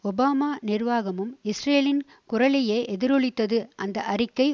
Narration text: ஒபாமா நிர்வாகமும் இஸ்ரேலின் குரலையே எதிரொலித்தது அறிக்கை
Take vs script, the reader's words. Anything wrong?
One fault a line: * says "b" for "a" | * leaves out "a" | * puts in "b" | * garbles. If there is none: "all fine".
* puts in "அந்த"